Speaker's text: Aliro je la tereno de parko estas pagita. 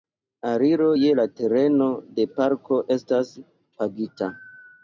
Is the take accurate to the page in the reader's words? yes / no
yes